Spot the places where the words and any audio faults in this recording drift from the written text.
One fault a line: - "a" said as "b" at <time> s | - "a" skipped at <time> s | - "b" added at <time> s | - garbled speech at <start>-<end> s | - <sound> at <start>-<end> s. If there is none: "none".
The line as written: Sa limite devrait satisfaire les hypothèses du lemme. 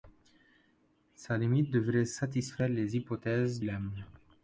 - "du" skipped at 3.6 s